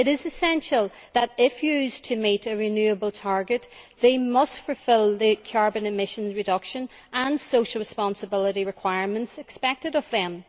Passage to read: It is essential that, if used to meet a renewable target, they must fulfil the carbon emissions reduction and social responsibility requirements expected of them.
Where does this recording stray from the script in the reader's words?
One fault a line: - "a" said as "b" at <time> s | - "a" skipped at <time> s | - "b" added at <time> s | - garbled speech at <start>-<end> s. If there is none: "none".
none